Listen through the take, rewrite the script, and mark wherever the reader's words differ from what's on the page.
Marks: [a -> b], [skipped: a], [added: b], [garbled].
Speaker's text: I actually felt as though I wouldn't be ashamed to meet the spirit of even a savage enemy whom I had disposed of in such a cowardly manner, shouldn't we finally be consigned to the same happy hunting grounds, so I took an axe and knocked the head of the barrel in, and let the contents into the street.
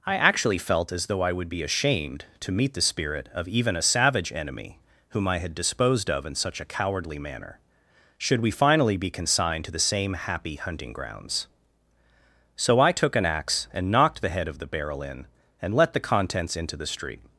I actually felt as though I [wouldn't -> would] be ashamed to meet the spirit of even a savage enemy whom I had disposed of in such a cowardly manner, [shouldn't -> should] we finally be consigned to the same happy hunting grounds, so I took an axe and knocked the head of the barrel in, and let the contents into the street.